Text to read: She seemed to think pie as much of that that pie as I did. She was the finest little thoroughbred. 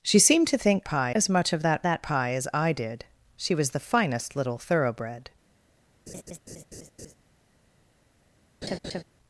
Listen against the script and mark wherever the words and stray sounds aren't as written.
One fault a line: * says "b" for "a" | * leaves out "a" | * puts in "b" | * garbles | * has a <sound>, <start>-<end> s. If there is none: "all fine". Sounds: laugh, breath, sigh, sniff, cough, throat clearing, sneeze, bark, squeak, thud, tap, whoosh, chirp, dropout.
* has a laugh, 6.1-7.2 s
* has a laugh, 8.6-9.0 s